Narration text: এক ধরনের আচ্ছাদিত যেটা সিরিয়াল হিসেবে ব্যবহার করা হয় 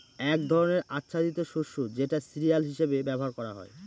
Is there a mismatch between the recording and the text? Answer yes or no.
yes